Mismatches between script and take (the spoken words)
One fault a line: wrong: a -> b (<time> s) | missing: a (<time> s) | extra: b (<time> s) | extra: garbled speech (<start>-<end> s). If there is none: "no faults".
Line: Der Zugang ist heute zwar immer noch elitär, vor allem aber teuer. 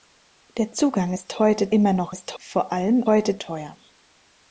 missing: zwar (1.7 s)
wrong: elitär -> ist (2.1 s)
wrong: aber -> heute (3.1 s)